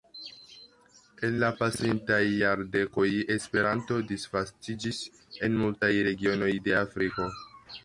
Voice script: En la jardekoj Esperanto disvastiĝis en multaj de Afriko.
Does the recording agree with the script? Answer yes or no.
no